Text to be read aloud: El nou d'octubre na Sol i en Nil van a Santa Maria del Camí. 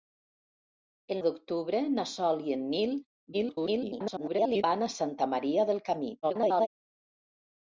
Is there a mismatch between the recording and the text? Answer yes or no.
yes